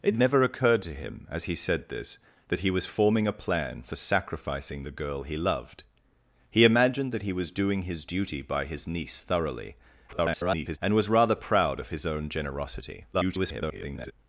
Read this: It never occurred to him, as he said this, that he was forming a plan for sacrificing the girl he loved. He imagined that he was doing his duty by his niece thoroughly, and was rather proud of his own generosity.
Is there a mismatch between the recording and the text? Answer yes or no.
yes